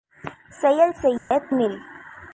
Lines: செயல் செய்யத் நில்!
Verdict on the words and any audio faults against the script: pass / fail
fail